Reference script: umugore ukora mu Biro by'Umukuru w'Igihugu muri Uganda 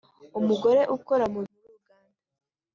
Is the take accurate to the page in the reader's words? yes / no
no